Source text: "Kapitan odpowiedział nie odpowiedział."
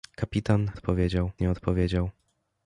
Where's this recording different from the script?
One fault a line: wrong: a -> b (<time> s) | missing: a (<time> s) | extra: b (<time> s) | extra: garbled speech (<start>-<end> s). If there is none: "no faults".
no faults